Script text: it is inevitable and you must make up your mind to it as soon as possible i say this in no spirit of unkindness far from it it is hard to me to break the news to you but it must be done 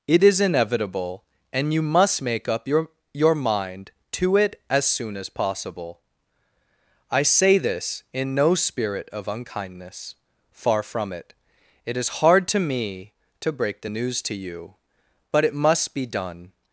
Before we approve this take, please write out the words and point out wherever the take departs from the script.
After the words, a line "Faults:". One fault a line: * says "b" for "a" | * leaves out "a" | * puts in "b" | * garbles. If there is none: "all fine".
it is inevitable and you must make up your your mind to it as soon as possible i say this in no spirit of unkindness far from it it is hard to me to break the news to you but it must be done
Faults:
* puts in "your"